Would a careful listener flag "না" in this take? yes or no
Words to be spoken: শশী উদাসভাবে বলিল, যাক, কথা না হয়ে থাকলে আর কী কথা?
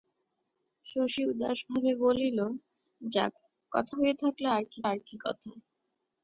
yes